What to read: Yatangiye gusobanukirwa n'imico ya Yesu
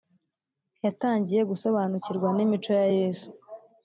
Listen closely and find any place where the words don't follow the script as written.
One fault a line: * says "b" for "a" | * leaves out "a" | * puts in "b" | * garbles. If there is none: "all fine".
all fine